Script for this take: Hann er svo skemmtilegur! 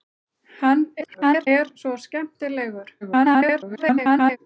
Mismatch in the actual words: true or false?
true